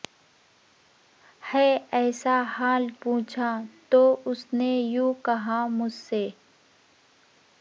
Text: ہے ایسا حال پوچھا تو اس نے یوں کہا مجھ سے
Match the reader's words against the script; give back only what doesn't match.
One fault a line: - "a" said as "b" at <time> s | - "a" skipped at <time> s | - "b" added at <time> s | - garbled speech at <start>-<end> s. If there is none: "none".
none